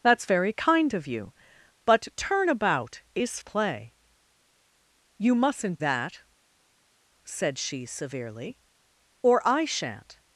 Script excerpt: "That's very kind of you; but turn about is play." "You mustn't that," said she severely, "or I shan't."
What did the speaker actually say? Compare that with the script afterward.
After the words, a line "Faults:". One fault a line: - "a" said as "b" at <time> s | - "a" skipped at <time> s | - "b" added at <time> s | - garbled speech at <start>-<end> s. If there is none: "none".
"That's very kind of you; but turn about is play." "You mustn't that," said she severely, "or I shan't."
Faults:
none